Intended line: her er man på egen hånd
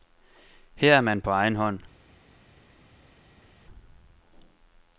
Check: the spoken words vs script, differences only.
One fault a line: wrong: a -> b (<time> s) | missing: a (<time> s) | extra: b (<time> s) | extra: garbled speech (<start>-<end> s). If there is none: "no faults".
no faults